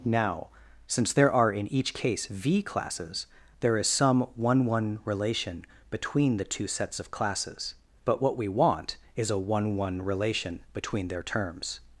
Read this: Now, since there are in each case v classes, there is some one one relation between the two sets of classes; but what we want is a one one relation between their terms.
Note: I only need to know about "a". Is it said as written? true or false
true